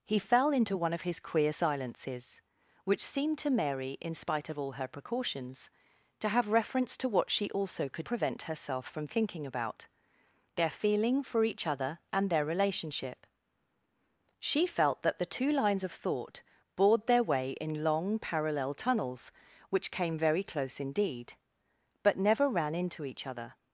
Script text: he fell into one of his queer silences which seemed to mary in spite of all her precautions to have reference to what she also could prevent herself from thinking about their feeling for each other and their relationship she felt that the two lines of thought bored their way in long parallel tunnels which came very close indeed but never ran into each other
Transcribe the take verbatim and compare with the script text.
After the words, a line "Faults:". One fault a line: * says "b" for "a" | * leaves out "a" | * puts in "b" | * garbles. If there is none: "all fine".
he fell into one of his queer silences which seemed to mary in spite of all her precautions to have reference to what she also could prevent herself from thinking about their feeling for each other and their relationship she felt that the two lines of thought bored their way in long parallel tunnels which came very close indeed but never ran into each other
Faults:
all fine